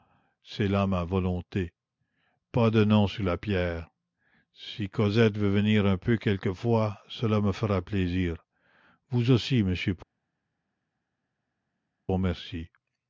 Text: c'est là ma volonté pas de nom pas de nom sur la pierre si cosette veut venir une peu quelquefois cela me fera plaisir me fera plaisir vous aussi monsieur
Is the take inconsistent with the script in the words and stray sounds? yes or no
yes